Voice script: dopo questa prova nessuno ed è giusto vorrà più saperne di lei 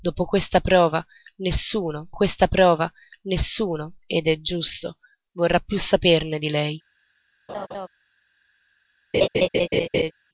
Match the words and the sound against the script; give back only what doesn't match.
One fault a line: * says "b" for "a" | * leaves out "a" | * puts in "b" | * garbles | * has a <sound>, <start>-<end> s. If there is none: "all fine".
* puts in "questa prova nessuno"
* has a laugh, 7.5-7.9 s
* has a laugh, 9.1-10.1 s